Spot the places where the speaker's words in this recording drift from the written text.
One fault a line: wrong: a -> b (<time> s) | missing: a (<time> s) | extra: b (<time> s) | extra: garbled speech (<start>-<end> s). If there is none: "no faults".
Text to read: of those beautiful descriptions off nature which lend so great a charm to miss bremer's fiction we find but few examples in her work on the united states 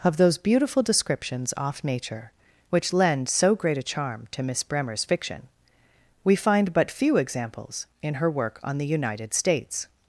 no faults